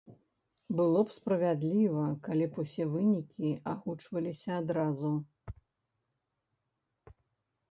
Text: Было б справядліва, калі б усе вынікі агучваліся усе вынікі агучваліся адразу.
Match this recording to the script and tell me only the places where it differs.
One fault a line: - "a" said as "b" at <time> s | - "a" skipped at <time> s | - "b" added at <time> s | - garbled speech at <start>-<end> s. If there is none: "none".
- "усе вынікі агучваліся" skipped at 4.5 s